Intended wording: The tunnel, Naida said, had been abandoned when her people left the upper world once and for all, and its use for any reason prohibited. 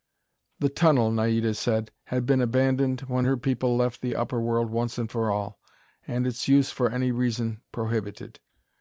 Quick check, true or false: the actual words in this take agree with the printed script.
true